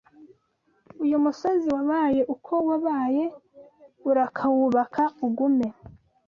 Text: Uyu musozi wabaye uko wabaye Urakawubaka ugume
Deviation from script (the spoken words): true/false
false